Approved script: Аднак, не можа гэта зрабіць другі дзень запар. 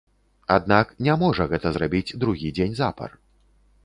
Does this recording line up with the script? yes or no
yes